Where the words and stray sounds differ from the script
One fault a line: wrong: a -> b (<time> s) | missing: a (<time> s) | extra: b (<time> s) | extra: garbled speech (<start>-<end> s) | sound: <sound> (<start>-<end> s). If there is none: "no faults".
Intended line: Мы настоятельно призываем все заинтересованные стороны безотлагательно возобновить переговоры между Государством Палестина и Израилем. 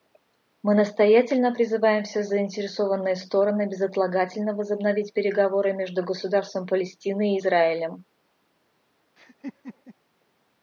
sound: laugh (9.2-9.9 s)